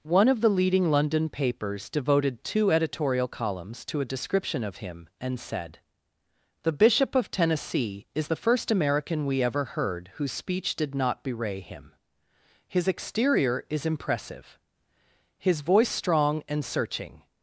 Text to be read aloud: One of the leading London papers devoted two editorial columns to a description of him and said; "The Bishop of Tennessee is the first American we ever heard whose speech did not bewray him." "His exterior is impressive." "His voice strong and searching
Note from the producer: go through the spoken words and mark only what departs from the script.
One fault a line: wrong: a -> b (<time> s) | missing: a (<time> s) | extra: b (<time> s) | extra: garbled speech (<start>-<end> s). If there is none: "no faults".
no faults